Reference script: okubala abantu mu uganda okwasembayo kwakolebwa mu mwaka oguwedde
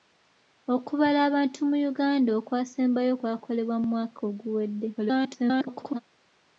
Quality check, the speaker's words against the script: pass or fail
fail